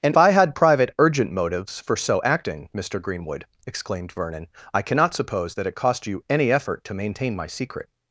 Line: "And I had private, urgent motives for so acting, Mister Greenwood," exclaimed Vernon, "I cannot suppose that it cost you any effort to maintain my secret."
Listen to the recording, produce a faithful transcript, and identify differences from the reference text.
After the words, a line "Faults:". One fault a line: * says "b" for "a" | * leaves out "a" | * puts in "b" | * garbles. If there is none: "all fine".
"And I had private, urgent motives for so acting, Mister Greenwood," exclaimed Vernon, "I cannot suppose that it cost you any effort to maintain my secret."
Faults:
all fine